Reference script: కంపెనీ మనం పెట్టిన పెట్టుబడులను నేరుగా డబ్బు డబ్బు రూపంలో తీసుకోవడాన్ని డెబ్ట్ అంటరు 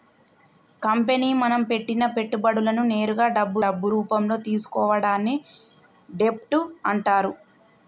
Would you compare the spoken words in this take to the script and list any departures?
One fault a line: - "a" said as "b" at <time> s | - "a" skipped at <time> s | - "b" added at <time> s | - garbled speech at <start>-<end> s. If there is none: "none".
none